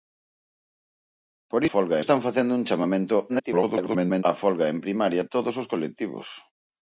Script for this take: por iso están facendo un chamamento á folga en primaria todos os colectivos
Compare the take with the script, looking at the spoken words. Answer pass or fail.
fail